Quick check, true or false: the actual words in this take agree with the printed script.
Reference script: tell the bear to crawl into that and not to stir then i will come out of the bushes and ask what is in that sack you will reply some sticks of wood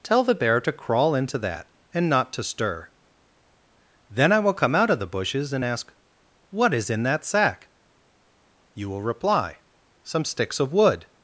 true